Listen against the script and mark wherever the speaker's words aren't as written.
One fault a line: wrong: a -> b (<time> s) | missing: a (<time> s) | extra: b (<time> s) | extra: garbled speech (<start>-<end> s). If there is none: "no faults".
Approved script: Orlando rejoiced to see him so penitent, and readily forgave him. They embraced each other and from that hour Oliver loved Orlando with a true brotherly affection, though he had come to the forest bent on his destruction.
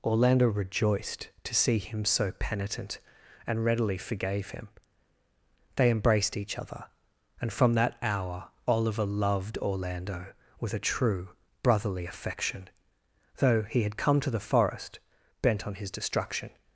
no faults